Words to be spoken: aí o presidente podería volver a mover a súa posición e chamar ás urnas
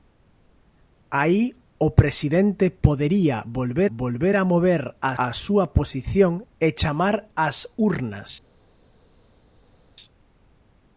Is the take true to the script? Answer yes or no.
no